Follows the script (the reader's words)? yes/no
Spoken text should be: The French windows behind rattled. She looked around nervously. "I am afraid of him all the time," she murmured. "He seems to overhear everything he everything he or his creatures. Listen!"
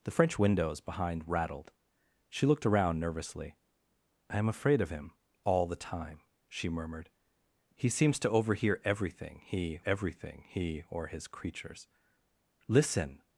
yes